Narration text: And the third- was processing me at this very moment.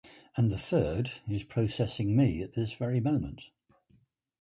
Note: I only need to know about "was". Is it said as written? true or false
false